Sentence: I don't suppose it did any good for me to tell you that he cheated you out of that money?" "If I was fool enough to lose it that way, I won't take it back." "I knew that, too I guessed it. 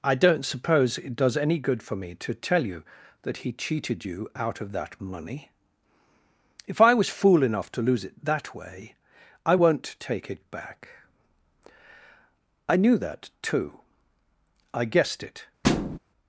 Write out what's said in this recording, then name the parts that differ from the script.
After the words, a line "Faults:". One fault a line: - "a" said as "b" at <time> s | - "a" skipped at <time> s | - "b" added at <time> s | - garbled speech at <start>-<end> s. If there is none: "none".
I don't suppose it does any good for me to tell you that he cheated you out of that money?" "If I was fool enough to lose it that way, I won't take it back." "I knew that, too I guessed it.
Faults:
- "did" said as "does" at 1.1 s